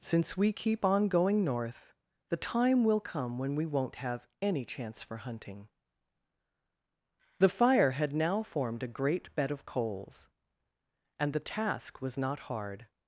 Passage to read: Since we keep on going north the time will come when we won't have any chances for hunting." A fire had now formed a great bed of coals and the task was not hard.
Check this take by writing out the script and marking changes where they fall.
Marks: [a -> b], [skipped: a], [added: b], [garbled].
Since we keep on going north the time will come when we won't have any [chances -> chance] for hunting." [A -> The] fire had now formed a great bed of coals and the task was not hard.